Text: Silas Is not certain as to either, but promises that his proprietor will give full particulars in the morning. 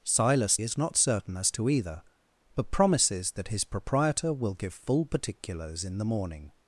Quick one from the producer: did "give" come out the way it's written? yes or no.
yes